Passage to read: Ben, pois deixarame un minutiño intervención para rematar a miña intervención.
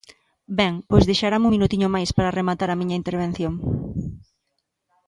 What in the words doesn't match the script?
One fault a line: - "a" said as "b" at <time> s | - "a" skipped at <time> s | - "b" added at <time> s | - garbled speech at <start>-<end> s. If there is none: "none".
- "intervención" said as "máis" at 2.0 s